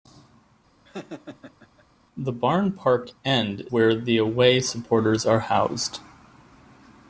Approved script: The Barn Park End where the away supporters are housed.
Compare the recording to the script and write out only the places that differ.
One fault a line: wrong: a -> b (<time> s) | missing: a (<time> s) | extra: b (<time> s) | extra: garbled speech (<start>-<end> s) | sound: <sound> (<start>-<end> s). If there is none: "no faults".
sound: laugh (0.8-1.9 s)